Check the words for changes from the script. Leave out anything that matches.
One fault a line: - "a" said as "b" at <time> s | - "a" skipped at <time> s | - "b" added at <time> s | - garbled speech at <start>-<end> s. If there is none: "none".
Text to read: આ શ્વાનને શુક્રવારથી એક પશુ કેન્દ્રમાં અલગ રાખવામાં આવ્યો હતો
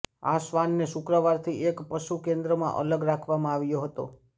none